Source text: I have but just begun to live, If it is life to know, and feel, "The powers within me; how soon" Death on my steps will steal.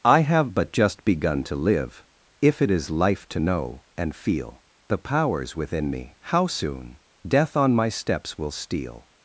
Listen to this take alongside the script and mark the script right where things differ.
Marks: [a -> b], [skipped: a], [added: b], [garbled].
I have but just begun to live, If it is life to know, and feel, "The powers within me; how soon" Death on my steps will steal.